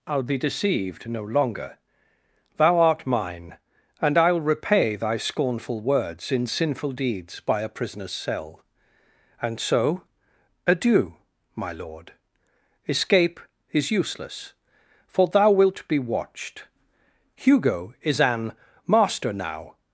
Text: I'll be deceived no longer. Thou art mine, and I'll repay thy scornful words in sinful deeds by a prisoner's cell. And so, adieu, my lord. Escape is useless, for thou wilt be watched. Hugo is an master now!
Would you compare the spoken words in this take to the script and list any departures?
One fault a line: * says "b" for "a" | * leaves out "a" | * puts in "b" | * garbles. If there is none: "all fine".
all fine